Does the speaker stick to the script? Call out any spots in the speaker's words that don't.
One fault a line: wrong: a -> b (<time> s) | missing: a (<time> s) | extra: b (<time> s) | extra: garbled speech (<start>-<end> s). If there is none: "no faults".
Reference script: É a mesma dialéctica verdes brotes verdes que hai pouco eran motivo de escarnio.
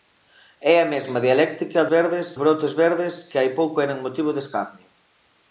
no faults